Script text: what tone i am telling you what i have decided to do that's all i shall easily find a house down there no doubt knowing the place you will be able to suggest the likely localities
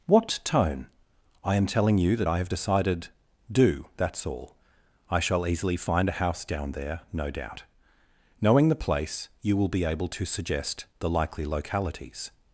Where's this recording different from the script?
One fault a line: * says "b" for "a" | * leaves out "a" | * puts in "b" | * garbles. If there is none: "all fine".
* says "that" for "what"
* leaves out "to"